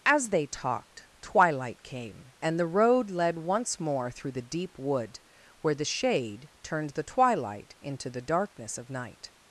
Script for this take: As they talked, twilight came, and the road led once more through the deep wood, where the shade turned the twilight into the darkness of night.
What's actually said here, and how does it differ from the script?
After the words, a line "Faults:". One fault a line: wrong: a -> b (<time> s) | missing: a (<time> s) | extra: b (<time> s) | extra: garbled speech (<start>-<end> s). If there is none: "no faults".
As they talked, twilight came, and the road led once more through the deep wood, where the shade turned the twilight into the darkness of night.
Faults:
no faults